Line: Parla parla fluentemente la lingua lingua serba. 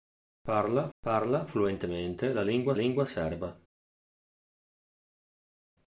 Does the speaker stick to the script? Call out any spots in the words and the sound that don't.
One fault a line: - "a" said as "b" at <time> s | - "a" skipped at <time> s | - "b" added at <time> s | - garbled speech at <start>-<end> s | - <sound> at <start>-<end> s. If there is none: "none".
none